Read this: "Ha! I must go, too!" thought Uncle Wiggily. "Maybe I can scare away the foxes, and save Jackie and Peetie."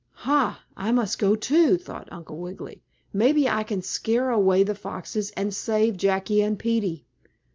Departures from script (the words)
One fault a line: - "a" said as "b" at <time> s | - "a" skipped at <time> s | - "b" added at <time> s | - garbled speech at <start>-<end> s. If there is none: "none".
none